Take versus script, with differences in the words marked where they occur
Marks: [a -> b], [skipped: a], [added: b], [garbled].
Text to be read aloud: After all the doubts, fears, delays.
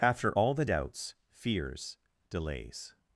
After all the doubts, fears, delays.